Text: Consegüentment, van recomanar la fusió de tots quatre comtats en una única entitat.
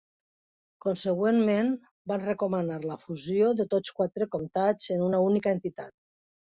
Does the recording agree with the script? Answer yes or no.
yes